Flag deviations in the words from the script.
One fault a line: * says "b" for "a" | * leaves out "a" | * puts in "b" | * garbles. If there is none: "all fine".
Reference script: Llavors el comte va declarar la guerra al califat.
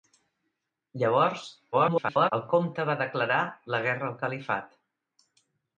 * garbles